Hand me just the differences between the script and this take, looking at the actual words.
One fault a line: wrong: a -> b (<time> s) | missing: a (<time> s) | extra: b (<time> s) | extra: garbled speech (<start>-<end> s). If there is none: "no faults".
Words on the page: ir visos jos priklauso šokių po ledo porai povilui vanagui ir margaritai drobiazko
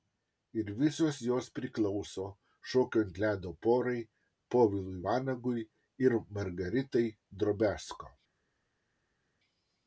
wrong: po -> ant (3.1 s)